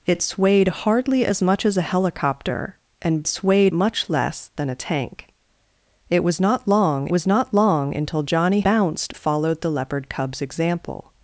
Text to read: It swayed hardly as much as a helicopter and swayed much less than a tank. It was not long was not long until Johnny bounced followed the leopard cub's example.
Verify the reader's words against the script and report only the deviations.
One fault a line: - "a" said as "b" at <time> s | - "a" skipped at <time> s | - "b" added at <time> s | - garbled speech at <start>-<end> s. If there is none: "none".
none